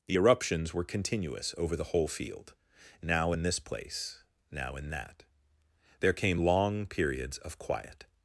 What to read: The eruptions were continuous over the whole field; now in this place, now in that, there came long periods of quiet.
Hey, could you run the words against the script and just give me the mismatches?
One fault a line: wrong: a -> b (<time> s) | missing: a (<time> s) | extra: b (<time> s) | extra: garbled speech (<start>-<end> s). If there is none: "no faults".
no faults